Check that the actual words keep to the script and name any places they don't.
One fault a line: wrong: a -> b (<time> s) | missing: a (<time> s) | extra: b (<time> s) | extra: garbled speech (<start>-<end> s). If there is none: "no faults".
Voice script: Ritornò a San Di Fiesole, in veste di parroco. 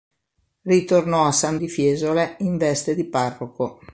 no faults